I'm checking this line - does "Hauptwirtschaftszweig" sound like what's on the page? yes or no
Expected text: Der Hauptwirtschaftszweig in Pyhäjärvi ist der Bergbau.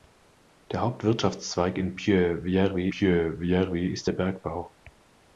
yes